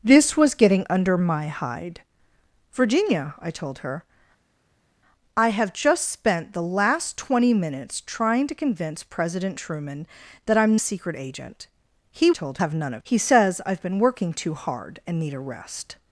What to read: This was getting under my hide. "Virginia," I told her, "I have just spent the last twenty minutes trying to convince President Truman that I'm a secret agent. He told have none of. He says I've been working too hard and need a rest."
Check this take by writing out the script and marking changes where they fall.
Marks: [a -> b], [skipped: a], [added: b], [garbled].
This was getting under my hide. "Virginia," I told her, "I have just spent the last twenty minutes trying to convince President Truman that I'm a secret agent. He told have none of. He says I've been working too hard and need a rest."